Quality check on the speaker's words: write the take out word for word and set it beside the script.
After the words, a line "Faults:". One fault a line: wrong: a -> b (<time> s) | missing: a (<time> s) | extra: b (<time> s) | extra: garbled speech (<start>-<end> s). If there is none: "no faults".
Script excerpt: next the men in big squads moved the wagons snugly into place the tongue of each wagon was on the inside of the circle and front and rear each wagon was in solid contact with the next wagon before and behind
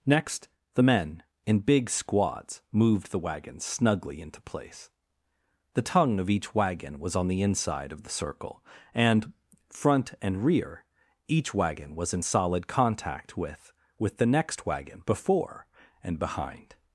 next the men in big squads moved the wagons snugly into place the tongue of each wagon was on the inside of the circle and front and rear each wagon was in solid contact with with the next wagon before and behind
Faults:
extra: with (14.0 s)